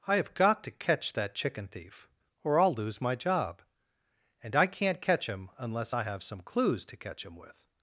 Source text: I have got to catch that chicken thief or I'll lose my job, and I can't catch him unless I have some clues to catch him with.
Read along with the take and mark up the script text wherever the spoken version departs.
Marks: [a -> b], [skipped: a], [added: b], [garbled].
I have got to catch that chicken thief or I'll lose my job, and I can't catch him unless I have some clues to catch him with.